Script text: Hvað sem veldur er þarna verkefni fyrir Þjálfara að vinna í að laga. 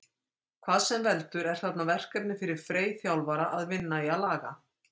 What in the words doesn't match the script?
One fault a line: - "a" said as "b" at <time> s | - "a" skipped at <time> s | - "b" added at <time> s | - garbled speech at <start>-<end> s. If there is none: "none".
- "Frey" added at 2.6 s